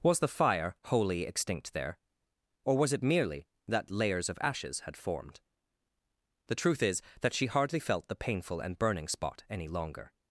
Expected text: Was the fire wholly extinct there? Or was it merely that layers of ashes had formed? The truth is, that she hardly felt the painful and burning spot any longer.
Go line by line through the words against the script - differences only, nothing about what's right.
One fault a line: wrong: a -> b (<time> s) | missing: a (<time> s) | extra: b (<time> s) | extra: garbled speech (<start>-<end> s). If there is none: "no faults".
no faults